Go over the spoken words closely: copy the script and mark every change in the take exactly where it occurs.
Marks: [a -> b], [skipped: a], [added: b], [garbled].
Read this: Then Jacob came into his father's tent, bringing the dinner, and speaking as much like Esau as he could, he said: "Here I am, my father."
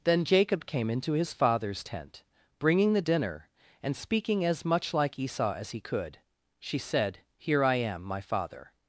Then Jacob came into his father's tent, bringing the dinner, and speaking as much like Esau as he could, [he -> she] said: "Here I am, my father."